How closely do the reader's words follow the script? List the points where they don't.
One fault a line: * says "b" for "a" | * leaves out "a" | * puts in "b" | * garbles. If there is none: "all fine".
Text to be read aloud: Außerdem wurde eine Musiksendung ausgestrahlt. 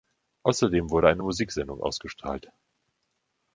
all fine